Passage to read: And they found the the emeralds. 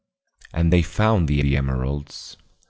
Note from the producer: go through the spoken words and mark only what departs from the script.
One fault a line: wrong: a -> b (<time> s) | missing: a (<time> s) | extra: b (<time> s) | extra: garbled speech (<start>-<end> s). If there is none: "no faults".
no faults